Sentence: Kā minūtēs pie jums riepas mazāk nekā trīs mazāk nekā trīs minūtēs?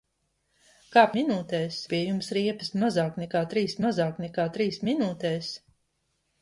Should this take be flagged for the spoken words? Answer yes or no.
no